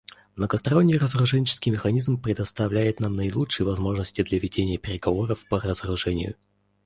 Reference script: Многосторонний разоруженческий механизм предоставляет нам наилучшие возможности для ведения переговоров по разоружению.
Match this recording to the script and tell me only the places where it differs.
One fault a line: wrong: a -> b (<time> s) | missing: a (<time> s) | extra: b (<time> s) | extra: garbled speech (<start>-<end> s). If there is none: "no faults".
no faults